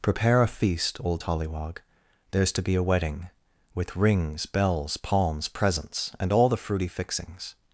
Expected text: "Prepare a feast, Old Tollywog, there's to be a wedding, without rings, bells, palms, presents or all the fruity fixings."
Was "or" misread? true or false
true